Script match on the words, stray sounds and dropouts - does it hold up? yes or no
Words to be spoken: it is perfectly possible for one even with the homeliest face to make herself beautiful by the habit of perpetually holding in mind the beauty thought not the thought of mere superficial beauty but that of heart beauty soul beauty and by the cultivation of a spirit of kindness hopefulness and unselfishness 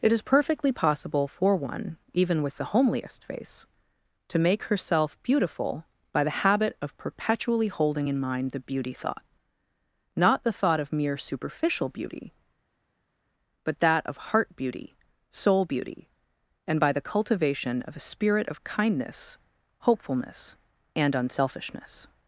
yes